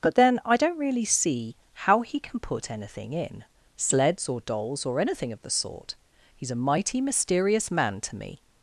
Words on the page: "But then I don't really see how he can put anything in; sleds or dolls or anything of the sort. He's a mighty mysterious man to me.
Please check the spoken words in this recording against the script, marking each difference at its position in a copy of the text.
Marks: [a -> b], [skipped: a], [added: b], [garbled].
"But then I don't really see how he can put anything in; sleds or dolls or anything of the sort. He's a mighty mysterious man to me.